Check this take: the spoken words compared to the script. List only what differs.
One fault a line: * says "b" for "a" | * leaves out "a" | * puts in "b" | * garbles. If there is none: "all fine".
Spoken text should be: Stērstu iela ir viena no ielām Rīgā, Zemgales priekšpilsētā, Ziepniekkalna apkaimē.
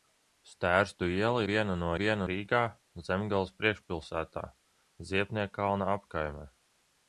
* leaves out "ir"
* says "viena" for "ielām"